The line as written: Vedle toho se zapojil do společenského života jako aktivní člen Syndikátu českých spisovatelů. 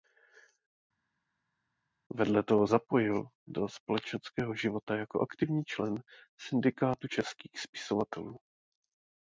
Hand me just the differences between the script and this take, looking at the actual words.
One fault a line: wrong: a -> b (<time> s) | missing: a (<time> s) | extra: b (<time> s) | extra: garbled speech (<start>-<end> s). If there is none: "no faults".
missing: se (2.7 s)